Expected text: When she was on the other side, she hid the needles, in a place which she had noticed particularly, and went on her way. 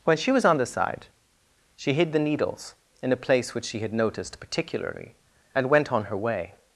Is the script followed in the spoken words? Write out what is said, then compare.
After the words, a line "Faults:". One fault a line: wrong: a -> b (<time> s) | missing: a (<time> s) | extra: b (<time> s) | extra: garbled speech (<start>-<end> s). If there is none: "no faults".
When she was on the side, she hid the needles, in a place which she had noticed particularly, and went on her way.
Faults:
missing: other (0.7 s)